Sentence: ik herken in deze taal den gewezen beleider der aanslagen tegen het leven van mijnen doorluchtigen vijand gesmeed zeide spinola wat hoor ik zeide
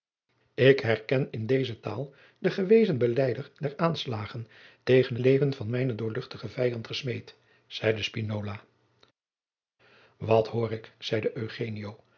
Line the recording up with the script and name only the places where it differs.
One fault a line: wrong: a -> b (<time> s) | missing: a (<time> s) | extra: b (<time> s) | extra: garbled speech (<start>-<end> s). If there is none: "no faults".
missing: het (5.2 s)